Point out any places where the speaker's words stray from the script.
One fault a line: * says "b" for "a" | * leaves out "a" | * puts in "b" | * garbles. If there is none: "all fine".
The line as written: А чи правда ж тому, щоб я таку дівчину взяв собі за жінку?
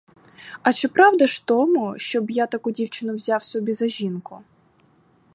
all fine